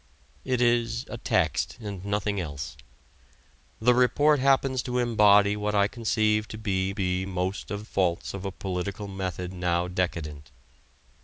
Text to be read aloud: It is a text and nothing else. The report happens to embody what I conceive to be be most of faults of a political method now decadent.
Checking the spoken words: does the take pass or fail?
pass